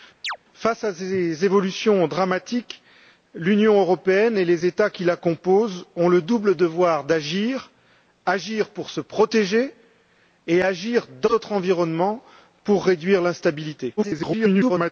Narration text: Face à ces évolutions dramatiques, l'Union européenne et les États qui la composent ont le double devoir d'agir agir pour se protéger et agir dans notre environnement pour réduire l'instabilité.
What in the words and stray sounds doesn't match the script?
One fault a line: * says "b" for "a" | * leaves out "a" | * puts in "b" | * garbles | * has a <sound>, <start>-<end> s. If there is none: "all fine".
* has a chirp, 0.2-0.4 s
* garbles